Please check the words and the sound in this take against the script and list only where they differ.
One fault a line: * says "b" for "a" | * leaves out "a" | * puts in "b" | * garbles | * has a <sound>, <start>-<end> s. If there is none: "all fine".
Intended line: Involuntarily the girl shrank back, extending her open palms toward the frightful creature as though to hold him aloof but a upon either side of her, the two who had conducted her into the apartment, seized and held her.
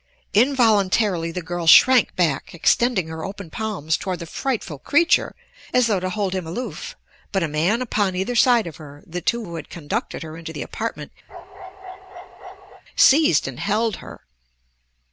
* puts in "man"
* has a bark, 11.3-12.8 s